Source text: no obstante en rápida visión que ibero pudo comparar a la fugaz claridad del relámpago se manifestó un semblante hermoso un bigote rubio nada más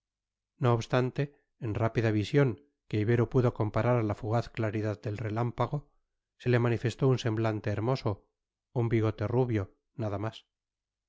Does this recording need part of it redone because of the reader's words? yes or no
yes